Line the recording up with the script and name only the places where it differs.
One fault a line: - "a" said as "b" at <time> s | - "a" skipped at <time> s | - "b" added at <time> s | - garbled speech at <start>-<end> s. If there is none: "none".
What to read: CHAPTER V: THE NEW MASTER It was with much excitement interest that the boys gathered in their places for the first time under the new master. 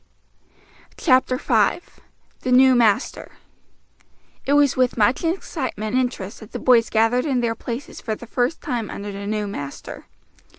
none